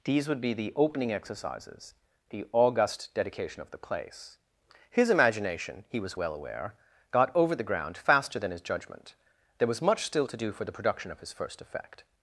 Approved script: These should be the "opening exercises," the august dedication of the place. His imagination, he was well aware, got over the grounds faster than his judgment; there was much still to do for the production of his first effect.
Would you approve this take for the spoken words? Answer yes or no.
no